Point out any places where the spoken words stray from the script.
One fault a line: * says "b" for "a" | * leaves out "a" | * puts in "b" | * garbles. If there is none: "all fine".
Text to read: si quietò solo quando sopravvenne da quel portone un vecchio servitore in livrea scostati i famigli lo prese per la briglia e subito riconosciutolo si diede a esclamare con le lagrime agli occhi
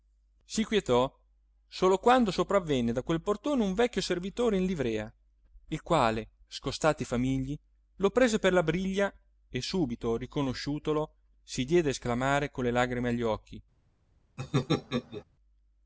* puts in "il quale"